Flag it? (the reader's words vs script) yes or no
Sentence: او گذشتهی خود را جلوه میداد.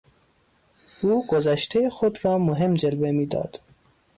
yes